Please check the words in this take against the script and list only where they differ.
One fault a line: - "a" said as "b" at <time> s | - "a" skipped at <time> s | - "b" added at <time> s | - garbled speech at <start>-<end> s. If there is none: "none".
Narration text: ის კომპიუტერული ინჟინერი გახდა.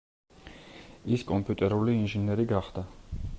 none